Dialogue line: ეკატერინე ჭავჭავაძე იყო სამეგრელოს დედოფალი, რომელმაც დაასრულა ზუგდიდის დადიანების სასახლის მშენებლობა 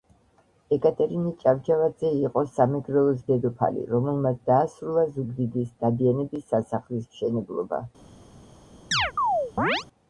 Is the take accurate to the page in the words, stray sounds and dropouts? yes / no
no